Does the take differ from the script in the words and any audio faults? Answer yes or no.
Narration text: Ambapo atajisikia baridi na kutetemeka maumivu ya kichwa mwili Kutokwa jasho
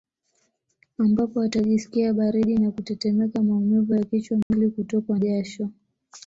yes